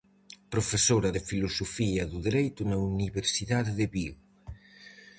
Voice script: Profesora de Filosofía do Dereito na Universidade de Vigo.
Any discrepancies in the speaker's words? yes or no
no